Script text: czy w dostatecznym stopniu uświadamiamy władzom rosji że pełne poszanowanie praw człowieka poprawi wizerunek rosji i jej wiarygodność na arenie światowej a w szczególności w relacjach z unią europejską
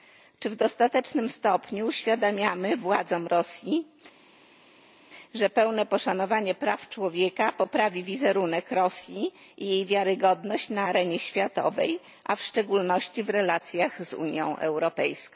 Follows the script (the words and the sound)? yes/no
yes